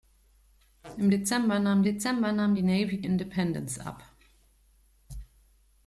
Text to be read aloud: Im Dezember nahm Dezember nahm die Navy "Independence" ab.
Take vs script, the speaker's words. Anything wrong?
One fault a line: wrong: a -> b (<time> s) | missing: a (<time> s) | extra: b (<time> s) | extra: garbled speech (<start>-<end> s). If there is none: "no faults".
no faults